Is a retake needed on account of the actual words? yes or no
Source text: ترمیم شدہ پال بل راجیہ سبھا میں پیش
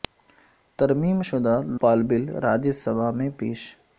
no